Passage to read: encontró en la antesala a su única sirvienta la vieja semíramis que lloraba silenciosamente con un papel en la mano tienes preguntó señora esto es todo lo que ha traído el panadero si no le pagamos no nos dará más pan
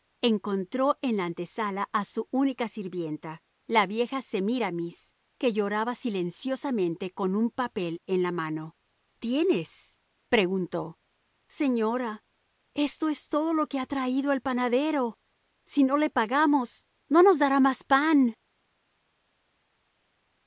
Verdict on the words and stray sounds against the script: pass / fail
pass